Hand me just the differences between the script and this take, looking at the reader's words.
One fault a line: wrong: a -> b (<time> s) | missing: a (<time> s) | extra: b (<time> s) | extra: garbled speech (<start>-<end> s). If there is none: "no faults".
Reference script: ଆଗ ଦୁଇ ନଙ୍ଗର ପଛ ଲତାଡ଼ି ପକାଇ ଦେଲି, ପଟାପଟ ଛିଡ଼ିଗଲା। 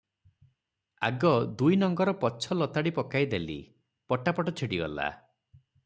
no faults